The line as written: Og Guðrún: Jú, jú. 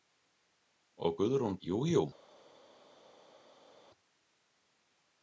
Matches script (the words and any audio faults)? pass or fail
pass